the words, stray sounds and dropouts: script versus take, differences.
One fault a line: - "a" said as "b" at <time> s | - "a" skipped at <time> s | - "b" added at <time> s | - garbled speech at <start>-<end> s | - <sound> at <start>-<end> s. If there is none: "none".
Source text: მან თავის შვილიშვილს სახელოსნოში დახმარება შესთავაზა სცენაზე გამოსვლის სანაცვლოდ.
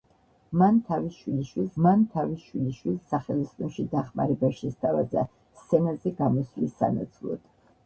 - "მან თავის შვილიშვილს" added at 1.9 s